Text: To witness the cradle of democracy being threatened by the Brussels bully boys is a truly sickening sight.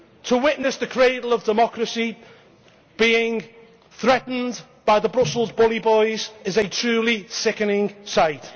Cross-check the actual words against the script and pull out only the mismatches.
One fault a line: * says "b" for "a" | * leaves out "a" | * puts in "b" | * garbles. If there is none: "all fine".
all fine